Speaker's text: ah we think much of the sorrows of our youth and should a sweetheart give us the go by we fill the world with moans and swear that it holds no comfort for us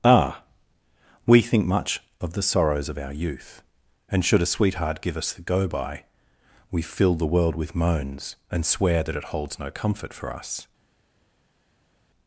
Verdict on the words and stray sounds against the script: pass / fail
pass